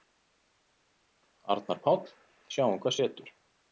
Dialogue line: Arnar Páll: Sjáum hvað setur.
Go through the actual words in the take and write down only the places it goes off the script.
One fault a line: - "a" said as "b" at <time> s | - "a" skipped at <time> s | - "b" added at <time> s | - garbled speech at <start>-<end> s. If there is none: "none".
none